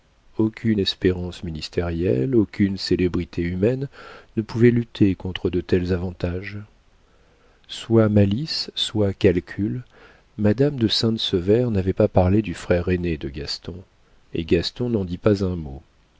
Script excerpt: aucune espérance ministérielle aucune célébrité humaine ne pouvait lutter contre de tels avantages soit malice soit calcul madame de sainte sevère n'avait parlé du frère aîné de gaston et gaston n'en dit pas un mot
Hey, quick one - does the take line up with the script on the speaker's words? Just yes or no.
no